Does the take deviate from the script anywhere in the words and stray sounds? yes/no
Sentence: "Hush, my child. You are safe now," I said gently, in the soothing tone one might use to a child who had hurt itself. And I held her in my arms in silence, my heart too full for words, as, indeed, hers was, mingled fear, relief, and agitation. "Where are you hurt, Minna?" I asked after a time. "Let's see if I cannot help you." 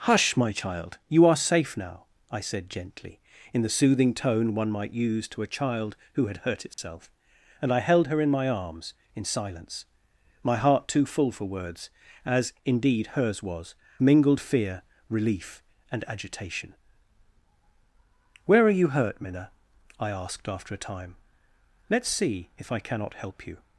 yes